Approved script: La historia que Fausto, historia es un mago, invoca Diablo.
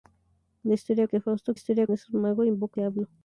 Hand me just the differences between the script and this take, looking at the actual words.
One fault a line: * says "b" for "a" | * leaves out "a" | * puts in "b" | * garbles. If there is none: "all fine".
all fine